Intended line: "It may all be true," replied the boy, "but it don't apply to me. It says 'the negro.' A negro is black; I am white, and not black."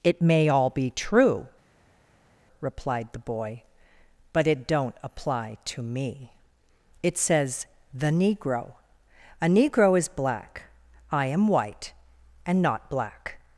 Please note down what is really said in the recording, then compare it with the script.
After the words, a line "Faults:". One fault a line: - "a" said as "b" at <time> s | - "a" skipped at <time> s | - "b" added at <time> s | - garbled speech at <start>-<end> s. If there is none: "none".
"It may all be true," replied the boy, "but it don't apply to me. It says 'the negro.' A negro is black; I am white, and not black."
Faults:
none